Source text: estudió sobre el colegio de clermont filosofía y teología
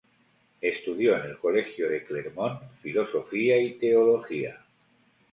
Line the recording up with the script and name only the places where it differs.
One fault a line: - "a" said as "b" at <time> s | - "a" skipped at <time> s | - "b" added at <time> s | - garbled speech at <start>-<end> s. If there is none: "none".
- "sobre" said as "en" at 1.1 s